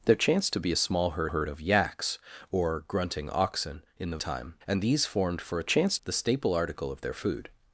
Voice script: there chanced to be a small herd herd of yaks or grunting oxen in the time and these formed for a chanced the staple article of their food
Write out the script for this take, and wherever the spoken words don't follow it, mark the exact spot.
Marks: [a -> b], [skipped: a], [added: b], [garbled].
there chanced to be a small herd herd of yaks or grunting oxen in the time and these formed for a chanced the staple article of their food